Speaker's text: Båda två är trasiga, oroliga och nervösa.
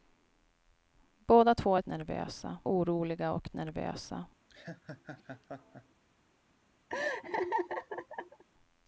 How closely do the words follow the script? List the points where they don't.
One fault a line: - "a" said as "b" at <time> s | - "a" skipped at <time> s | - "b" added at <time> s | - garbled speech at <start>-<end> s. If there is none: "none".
- "trasiga" said as "nervösa" at 1.9 s